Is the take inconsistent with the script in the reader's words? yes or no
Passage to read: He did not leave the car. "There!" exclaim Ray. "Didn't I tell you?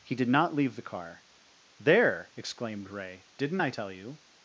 yes